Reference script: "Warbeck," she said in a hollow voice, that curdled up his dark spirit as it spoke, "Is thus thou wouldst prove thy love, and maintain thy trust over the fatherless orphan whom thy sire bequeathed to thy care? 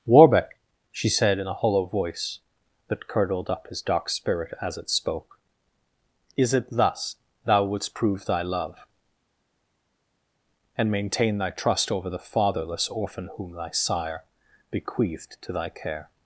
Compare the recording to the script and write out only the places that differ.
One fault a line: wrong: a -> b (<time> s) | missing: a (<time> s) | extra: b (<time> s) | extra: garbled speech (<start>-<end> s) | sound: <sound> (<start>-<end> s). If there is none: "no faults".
extra: it (6.5 s)